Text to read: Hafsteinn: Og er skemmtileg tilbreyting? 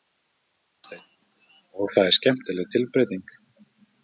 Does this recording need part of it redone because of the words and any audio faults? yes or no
yes